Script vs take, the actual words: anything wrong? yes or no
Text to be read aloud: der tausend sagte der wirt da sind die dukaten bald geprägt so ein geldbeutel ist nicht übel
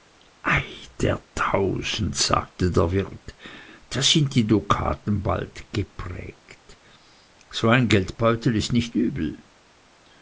no